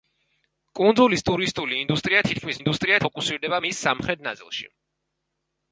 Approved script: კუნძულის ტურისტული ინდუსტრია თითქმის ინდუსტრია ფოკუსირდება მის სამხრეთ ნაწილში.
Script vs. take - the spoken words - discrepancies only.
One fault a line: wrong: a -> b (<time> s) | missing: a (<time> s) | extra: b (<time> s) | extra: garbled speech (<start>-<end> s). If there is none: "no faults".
no faults